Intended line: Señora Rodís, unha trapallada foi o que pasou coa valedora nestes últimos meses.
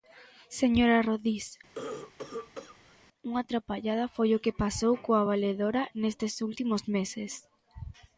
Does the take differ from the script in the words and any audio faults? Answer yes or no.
yes